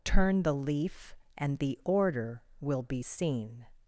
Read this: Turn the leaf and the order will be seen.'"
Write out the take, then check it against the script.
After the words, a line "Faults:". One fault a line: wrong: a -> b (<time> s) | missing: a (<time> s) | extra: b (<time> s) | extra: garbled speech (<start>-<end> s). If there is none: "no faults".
Turn the leaf and the order will be seen.'"
Faults:
no faults